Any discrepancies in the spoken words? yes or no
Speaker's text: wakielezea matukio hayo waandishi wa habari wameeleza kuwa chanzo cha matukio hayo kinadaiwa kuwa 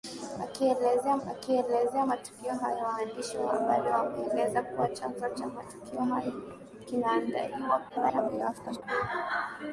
yes